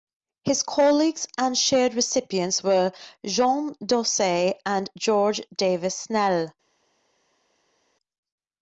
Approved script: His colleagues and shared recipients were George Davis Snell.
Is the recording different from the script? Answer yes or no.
yes